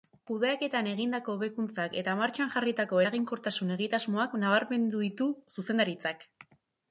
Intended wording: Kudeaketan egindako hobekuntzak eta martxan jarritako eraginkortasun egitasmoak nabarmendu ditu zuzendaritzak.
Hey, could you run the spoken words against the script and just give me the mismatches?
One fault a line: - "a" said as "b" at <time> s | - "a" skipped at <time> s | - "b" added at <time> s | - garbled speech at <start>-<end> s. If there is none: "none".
none